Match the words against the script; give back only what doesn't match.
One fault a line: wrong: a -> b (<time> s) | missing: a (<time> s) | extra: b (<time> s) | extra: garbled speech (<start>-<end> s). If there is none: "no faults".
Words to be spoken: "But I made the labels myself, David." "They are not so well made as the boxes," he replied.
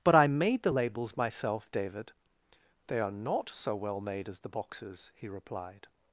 no faults